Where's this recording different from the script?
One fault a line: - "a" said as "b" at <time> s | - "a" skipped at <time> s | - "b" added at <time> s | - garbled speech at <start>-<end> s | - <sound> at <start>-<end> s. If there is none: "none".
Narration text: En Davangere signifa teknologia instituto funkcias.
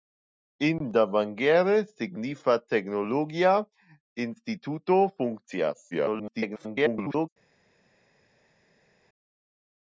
- garbled speech at 5.9-7.3 s